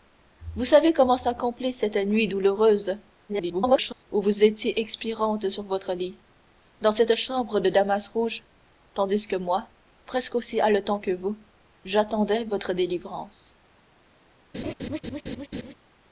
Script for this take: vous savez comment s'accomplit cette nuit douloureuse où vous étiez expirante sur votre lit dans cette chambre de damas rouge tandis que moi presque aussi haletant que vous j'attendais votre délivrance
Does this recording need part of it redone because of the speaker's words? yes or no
yes